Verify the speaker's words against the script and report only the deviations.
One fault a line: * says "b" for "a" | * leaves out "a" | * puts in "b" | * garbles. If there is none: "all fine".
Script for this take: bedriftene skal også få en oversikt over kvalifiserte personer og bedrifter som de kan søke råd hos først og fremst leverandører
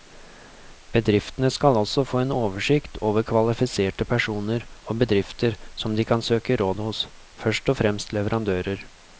all fine